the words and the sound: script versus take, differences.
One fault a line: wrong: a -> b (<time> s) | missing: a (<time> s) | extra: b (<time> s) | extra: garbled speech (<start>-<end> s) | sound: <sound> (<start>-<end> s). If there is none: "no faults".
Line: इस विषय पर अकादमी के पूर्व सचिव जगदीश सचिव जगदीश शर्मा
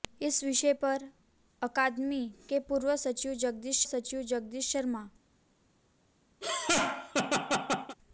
sound: laugh (6.4-8.0 s)